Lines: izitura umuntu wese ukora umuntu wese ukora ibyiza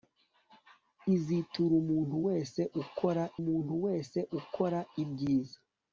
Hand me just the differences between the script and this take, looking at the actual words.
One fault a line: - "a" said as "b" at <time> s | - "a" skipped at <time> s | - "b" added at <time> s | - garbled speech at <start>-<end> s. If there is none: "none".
none